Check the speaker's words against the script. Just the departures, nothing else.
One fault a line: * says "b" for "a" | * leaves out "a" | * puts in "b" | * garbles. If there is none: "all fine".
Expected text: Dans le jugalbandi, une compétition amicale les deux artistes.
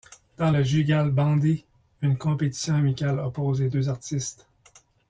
* puts in "oppose"